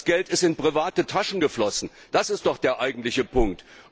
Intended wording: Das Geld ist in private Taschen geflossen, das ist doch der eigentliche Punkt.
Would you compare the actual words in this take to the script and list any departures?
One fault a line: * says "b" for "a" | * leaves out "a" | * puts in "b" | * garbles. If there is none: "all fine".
all fine